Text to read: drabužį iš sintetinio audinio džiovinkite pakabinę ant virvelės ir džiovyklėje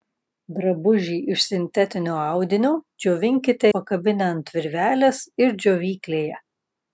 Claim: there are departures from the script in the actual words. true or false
false